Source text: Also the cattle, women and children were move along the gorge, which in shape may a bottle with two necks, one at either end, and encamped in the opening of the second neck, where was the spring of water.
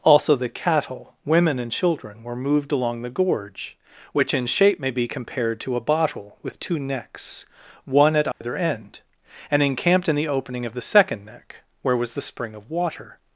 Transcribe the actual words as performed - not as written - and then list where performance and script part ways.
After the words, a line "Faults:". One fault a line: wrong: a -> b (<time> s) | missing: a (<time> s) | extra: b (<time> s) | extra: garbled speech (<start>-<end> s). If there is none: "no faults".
Also the cattle, women and children were moved along the gorge, which in shape may be compared to a bottle with two necks, one at either end, and encamped in the opening of the second neck, where was the spring of water.
Faults:
wrong: move -> moved (2.4 s)
extra: be compared to (4.9 s)